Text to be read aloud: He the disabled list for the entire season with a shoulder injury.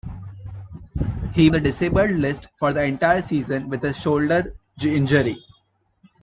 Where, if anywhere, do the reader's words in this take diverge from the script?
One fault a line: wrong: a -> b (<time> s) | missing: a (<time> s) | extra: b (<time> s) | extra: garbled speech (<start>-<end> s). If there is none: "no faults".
no faults